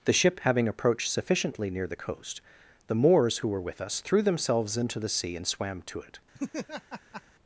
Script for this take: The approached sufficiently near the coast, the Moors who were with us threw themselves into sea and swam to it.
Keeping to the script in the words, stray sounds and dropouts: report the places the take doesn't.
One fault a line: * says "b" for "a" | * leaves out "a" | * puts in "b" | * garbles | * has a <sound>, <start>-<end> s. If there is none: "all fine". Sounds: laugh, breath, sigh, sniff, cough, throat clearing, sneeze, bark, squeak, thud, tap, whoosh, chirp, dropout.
* puts in "ship having"
* puts in "the"
* has a laugh, 6.3-7.2 s